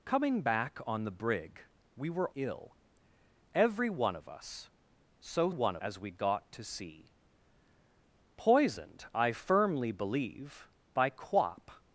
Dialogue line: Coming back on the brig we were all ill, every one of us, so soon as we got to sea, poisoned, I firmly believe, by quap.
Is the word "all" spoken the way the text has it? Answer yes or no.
no